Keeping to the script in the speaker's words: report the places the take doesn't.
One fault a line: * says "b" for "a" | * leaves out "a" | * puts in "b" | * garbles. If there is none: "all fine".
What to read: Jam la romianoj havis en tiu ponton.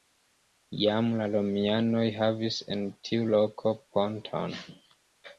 * puts in "loko"